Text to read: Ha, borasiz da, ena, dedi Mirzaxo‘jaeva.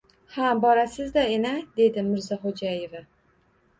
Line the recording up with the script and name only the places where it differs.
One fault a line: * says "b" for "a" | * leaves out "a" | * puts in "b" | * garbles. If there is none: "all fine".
all fine